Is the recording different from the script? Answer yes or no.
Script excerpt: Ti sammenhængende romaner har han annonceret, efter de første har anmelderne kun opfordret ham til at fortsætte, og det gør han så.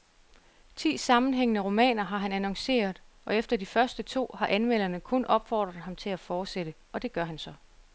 yes